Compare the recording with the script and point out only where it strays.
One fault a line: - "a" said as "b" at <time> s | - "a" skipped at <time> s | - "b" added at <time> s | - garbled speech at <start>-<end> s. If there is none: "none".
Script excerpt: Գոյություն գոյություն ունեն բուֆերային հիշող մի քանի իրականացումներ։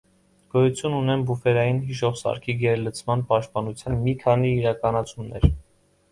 - "գոյություն" skipped at 0.9 s
- "սարքի գերլցման պաշտպանության" added at 2.2 s